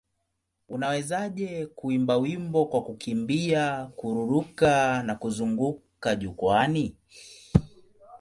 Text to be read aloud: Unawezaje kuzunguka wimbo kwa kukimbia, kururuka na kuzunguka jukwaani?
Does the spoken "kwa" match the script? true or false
true